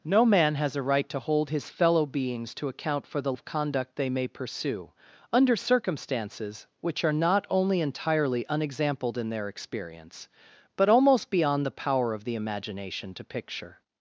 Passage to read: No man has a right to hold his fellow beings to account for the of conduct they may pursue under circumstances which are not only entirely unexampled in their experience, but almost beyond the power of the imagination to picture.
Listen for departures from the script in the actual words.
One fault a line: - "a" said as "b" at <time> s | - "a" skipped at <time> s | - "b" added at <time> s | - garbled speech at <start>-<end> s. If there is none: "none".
none